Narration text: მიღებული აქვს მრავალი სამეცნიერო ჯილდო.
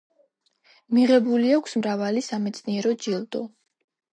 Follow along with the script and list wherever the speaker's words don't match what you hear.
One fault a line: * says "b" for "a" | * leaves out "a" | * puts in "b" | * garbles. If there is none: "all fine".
all fine